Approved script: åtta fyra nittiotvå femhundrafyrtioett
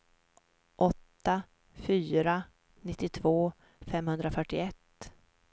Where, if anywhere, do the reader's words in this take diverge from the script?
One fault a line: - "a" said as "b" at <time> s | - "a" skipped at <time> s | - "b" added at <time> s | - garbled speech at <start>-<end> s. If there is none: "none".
none